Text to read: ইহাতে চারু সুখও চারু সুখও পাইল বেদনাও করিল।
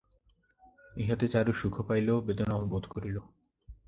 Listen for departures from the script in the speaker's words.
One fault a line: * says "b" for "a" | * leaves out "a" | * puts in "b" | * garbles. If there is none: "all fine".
* leaves out "চারু সুখও"
* puts in "বোধ"